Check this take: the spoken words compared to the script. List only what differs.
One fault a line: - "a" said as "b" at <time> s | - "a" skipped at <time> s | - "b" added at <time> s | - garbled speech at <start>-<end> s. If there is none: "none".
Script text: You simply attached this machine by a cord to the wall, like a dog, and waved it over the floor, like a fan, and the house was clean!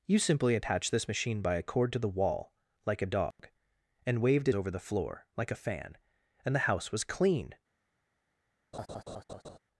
none